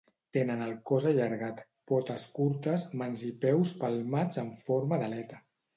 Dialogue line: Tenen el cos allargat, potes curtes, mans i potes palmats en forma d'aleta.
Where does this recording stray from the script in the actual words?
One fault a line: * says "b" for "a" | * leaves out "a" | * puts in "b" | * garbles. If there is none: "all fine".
* says "peus" for "potes"